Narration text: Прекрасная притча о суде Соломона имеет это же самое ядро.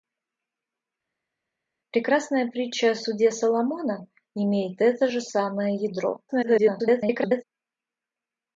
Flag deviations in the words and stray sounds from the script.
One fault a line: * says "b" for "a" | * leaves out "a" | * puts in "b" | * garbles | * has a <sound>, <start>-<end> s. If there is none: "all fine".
* garbles